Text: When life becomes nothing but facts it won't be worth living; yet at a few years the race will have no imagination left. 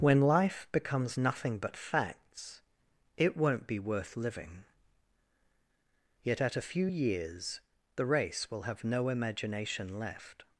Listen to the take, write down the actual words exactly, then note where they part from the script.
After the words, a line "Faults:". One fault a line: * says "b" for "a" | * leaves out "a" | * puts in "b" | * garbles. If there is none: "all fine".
When life becomes nothing but facts it won't be worth living; yet at a few years the race will have no imagination left.
Faults:
all fine